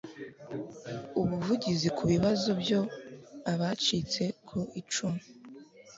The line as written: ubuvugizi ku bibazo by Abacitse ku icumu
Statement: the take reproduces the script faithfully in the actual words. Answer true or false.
true